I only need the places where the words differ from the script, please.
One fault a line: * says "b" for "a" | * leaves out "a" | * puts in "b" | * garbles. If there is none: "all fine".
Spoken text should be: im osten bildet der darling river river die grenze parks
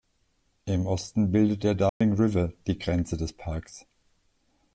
* leaves out "river"
* puts in "des"